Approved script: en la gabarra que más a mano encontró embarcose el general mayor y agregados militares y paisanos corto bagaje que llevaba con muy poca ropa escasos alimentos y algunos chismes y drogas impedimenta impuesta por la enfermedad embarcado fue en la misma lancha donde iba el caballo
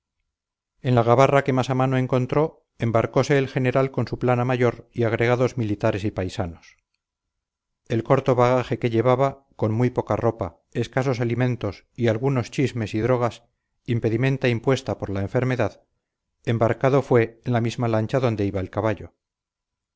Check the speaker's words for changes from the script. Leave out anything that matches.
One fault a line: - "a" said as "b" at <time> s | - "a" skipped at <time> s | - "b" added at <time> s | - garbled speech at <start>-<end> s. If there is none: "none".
- "con su plana" added at 3.9 s
- "el" added at 7.9 s